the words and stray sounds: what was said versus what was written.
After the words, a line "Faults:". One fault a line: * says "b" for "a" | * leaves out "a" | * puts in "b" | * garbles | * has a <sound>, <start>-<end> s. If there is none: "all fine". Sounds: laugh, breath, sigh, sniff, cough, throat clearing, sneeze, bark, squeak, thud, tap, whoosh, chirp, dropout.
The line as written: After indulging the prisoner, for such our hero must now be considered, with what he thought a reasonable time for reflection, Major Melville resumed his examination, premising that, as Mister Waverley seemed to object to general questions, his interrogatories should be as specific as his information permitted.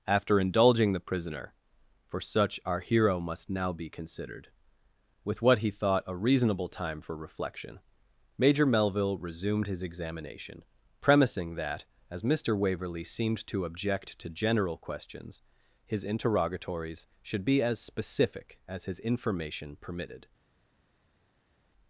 After indulging the prisoner, for such our hero must now be considered, with what he thought a reasonable time for reflection, Major Melville resumed his examination, premising that, as Mister Waverley seemed to object to general questions, his interrogatories should be as specific as his information permitted.
Faults:
all fine